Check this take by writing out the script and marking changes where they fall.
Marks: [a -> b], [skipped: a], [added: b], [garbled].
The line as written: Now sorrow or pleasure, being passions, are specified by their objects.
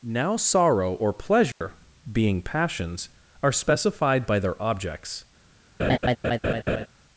Now sorrow or pleasure, being passions, are specified by their objects.